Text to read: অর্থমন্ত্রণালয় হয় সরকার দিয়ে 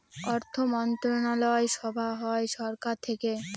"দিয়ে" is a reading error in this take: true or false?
true